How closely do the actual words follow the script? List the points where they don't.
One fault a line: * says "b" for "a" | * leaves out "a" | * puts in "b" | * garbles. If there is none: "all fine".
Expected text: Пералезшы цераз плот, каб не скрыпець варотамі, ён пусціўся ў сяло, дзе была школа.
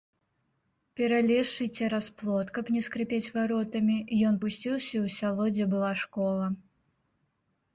all fine